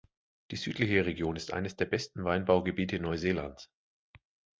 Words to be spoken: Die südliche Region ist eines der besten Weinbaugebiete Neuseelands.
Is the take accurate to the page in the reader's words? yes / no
yes